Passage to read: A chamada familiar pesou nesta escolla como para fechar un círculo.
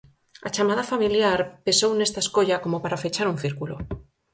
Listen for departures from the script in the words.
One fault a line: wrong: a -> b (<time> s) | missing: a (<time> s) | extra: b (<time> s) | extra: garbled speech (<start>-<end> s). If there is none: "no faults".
no faults